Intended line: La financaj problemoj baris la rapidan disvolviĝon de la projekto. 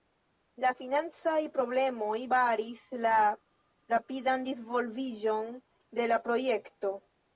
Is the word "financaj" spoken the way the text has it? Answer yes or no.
yes